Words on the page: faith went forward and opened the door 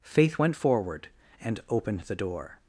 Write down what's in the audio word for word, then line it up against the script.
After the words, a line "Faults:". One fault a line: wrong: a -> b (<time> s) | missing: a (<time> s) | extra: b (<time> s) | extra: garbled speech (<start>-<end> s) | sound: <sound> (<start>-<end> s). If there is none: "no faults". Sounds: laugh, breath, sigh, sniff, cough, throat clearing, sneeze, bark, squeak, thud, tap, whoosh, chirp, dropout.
faith went forward and opened the door
Faults:
no faults